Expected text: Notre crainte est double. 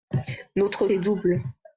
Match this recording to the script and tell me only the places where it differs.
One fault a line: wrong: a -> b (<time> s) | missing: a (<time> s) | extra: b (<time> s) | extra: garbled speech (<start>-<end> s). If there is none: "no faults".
missing: crainte (0.9 s)